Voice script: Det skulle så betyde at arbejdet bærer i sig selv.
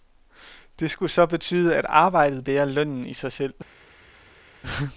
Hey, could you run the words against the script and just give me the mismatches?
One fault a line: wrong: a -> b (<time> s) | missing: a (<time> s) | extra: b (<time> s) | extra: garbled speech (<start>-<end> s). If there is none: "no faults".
extra: lønnen (2.6 s)